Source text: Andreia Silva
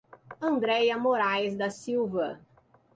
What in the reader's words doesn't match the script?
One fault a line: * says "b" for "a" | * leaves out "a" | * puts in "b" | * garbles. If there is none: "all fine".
* puts in "Moraes da"